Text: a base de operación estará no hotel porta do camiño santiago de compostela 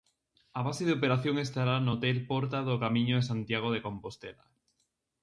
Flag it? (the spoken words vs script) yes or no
yes